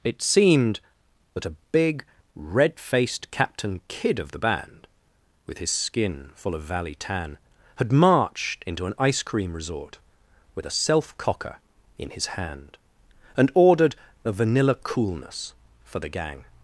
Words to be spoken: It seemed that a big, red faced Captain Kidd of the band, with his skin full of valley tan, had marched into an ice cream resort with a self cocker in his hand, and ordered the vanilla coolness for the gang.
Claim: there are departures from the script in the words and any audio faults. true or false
true